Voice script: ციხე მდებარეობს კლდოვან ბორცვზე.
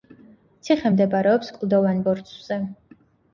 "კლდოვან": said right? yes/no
yes